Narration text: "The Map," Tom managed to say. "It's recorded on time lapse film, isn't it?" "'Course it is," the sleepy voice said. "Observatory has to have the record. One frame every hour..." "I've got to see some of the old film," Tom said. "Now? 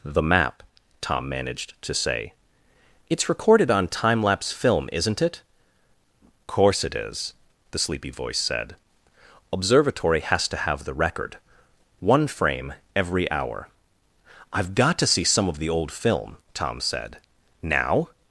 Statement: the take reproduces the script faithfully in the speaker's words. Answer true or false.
true